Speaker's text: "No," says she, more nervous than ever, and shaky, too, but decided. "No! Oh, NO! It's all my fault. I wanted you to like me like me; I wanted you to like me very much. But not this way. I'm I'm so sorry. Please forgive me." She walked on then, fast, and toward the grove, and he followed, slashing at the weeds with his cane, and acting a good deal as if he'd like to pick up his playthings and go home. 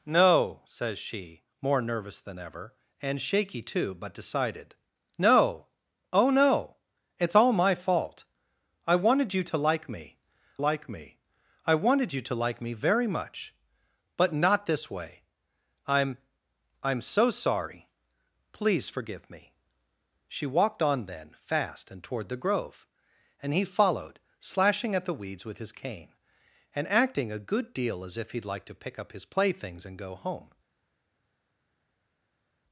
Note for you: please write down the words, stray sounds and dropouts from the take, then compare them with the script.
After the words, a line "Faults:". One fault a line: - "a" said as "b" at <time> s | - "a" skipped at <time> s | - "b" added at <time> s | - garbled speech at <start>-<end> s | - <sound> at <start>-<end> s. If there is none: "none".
"No," says she, more nervous than ever, and shaky, too, but decided. "No! Oh, NO! It's all my fault. I wanted you to like me like me; I wanted you to like me very much. But not this way. I'm I'm so sorry. Please forgive me." She walked on then, fast, and toward the grove, and he followed, slashing at the weeds with his cane, and acting a good deal as if he'd like to pick up his playthings and go home.
Faults:
none